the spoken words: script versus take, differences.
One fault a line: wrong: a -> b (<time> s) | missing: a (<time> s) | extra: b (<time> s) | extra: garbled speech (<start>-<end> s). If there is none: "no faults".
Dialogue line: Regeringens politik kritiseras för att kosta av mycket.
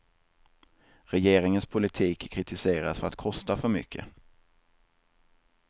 wrong: av -> för (3.6 s)